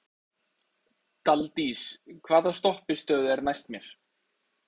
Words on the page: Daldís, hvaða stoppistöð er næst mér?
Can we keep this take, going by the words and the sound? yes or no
yes